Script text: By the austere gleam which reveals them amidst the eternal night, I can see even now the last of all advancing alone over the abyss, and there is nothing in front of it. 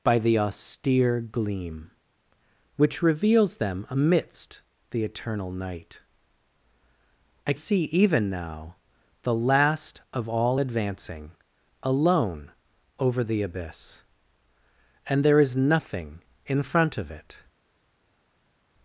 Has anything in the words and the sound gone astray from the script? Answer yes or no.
yes